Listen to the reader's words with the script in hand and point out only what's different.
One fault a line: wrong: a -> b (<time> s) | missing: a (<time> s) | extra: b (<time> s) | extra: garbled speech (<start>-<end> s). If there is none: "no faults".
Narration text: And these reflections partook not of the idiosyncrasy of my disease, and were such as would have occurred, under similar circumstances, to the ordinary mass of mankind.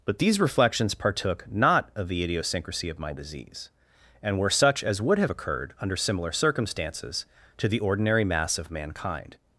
wrong: And -> But (0.1 s)